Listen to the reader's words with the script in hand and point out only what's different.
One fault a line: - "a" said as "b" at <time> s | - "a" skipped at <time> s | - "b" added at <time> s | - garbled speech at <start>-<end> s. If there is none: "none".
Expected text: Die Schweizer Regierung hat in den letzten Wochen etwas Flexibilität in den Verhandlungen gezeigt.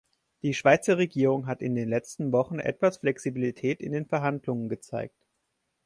none